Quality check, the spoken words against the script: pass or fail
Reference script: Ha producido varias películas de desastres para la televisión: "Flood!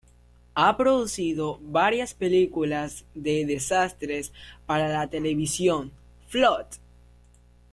pass